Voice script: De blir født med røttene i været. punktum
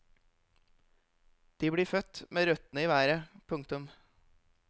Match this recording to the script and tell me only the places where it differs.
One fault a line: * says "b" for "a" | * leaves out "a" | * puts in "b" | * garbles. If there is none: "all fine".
all fine